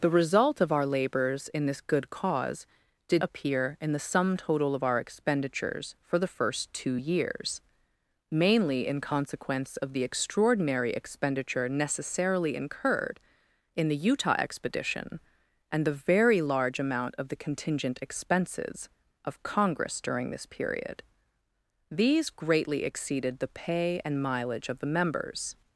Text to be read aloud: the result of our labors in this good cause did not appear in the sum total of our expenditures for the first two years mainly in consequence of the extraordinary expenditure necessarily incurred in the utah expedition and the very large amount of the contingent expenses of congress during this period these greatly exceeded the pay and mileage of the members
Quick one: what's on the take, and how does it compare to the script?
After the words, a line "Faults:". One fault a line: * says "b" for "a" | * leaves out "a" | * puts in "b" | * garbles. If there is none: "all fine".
the result of our labors in this good cause did appear in the sum total of our expenditures for the first two years mainly in consequence of the extraordinary expenditure necessarily incurred in the utah expedition and the very large amount of the contingent expenses of congress during this period these greatly exceeded the pay and mileage of the members
Faults:
* leaves out "not"